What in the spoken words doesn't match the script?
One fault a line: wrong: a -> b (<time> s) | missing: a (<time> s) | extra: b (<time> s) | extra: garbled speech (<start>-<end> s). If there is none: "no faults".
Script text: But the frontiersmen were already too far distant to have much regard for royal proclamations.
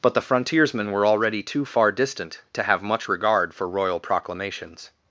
no faults